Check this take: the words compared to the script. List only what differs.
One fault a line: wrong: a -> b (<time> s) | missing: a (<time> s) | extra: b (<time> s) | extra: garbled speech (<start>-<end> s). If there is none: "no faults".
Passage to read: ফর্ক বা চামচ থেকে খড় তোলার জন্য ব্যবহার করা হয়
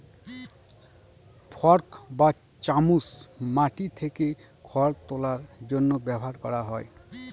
extra: মাটি (3.6 s)